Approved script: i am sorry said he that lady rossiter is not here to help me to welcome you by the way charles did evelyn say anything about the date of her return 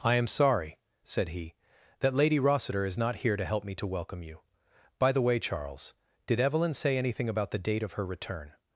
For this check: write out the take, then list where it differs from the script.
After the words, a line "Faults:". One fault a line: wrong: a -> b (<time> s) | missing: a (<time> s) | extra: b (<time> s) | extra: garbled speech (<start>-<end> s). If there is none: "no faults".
i am sorry said he that lady rossiter is not here to help me to welcome you by the way charles did evelyn say anything about the date of her return
Faults:
no faults